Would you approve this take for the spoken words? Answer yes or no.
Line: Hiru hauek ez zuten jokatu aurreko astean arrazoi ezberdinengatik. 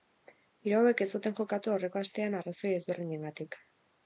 yes